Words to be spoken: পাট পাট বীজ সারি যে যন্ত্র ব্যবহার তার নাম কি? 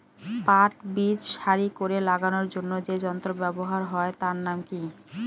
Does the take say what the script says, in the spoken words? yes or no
no